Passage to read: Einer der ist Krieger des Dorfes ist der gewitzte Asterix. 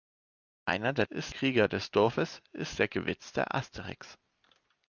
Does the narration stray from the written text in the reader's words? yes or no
no